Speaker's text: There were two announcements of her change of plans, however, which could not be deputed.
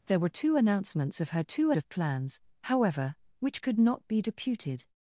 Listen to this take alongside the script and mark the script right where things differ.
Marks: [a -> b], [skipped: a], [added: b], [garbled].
There were two announcements of her [change -> two] of plans, however, which could not be deputed.